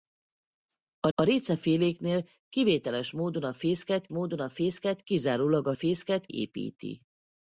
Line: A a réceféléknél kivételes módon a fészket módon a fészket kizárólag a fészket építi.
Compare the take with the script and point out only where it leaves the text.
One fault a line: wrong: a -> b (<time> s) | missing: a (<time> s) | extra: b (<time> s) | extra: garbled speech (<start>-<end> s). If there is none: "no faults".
no faults